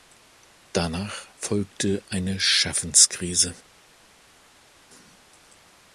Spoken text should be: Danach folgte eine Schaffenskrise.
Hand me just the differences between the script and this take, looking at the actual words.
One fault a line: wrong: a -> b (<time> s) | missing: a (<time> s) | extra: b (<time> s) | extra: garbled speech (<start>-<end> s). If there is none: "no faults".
no faults